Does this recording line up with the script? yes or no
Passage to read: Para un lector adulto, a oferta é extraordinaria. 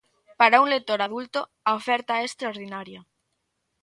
yes